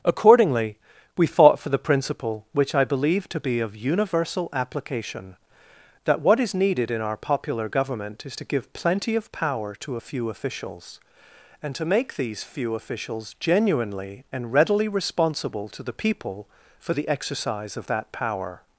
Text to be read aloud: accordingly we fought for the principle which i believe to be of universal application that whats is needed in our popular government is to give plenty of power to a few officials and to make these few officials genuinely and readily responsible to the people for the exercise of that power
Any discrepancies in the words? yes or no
yes